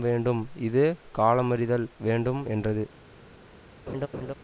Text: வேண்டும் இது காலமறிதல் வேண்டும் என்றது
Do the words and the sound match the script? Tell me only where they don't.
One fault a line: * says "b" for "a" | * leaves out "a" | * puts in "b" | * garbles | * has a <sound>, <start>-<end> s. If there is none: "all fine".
* has a laugh, 3.9-4.3 s